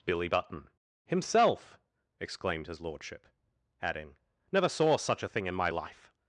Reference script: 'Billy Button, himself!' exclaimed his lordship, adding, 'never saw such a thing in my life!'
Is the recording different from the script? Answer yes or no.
no